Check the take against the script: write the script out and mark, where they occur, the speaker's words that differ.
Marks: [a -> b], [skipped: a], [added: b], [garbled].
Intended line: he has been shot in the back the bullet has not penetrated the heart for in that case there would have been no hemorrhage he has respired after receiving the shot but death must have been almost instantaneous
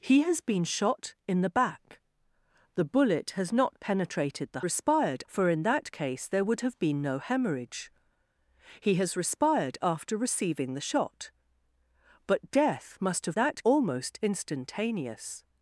he has been shot in the back the bullet has not penetrated the [heart -> respired] for in that case there would have been no hemorrhage he has respired after receiving the shot but death must have [been -> that] almost instantaneous